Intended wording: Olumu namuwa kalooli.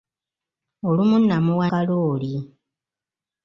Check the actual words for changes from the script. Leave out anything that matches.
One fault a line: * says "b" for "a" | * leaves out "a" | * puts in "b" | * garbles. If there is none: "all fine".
all fine